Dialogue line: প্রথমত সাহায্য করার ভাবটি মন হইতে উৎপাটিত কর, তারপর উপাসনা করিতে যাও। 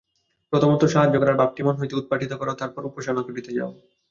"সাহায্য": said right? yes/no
yes